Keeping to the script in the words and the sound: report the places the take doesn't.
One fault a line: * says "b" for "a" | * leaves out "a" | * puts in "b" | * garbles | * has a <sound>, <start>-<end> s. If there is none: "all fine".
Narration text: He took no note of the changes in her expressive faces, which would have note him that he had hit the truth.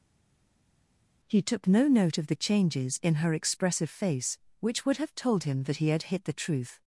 * says "face" for "faces"
* says "told" for "note"